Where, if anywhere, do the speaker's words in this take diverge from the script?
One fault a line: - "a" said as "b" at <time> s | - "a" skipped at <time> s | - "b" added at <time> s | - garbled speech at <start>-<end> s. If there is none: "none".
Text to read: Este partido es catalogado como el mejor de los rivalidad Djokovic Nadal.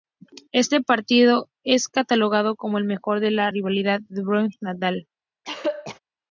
- "los" said as "la" at 3.3 s